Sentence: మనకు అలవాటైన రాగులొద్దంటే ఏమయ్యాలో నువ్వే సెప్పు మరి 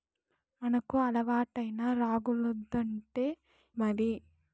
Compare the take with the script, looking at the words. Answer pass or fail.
fail